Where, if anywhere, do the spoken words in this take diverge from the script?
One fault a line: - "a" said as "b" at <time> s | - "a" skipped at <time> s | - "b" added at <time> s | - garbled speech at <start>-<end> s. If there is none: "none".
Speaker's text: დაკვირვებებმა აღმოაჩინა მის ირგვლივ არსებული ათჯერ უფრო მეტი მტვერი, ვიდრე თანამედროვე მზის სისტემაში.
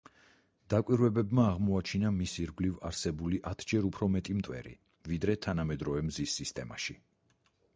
none